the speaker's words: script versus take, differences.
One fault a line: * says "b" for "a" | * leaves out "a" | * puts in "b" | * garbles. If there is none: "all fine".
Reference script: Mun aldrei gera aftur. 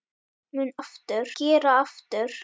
* says "aftur" for "aldrei"